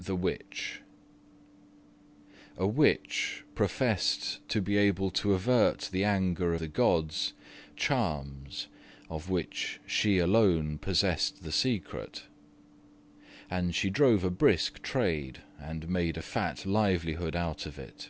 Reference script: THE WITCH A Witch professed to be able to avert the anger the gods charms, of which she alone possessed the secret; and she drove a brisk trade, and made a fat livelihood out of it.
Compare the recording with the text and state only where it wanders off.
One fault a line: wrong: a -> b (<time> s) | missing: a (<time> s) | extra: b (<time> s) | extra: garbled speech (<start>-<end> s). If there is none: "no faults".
no faults